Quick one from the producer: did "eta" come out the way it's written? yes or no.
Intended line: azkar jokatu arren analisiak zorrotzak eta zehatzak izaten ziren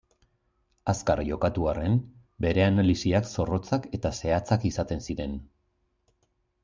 yes